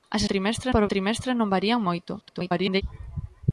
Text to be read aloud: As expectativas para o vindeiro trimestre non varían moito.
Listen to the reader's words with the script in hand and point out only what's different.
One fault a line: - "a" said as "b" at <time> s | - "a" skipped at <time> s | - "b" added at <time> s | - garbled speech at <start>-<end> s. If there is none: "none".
- "expectativas" said as "trimestre" at 0.3 s
- "vindeiro" skipped at 0.9 s
- garbled speech at 2.2-2.8 s